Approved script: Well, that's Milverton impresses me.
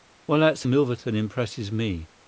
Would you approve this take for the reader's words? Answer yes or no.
yes